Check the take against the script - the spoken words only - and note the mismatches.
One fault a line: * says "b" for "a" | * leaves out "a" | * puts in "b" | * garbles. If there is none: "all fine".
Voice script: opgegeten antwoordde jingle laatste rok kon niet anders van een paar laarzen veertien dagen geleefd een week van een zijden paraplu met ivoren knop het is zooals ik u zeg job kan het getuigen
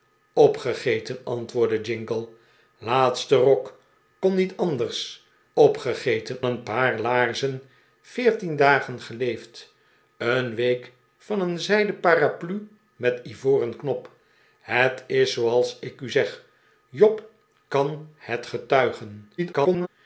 * says "opgegeten" for "van"
* garbles